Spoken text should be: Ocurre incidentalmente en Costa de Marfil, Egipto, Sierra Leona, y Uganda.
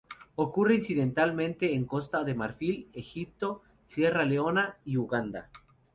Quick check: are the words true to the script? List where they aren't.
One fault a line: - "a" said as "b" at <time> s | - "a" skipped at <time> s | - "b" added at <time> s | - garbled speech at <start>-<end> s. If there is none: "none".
none